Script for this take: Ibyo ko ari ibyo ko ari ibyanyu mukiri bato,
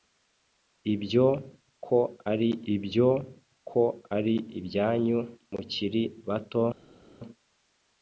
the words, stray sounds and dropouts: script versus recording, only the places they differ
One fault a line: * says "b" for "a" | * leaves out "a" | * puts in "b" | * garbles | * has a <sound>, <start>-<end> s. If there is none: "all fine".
all fine